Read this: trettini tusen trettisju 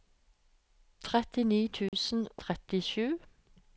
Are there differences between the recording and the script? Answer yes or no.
no